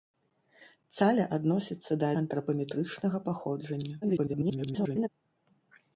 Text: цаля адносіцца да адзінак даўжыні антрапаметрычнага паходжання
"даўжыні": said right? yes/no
no